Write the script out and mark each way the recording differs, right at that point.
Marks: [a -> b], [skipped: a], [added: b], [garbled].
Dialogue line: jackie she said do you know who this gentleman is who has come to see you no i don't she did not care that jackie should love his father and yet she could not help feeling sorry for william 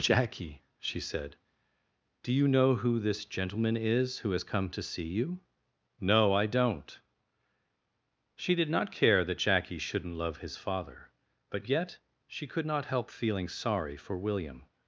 jackie she said do you know who this gentleman is who has come to see you no i don't she did not care that jackie [should -> shouldn't] love his father [and -> but] yet she could not help feeling sorry for william